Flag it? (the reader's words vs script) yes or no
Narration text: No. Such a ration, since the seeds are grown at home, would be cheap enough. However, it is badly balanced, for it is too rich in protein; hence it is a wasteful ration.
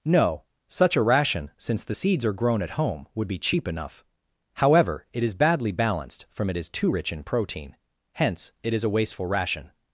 yes